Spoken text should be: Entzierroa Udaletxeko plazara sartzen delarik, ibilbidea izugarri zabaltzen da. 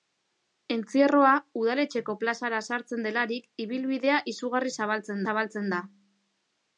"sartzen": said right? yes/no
yes